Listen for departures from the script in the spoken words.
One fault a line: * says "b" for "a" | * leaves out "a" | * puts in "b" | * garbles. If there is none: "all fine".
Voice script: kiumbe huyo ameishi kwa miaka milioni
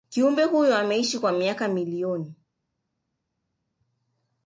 all fine